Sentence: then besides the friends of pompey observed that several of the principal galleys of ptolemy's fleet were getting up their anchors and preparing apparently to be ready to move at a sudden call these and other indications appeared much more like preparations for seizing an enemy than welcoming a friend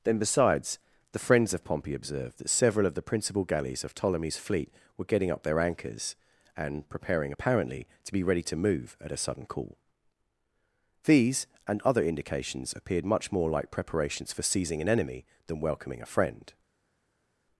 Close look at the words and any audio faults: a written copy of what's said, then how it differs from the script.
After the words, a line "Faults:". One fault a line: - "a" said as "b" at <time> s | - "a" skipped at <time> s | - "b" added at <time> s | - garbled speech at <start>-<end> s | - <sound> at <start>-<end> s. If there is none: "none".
then besides the friends of pompey observed that several of the principal galleys of ptolemy's fleet were getting up their anchors and preparing apparently to be ready to move at a sudden call these and other indications appeared much more like preparations for seizing an enemy than welcoming a friend
Faults:
none